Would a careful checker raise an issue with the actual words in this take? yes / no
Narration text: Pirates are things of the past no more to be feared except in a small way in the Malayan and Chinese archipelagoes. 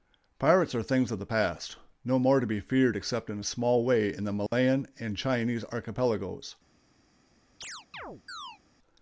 no